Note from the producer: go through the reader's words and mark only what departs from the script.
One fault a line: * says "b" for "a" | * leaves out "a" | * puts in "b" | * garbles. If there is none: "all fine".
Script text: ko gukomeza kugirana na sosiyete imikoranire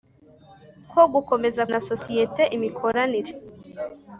* leaves out "kugirana"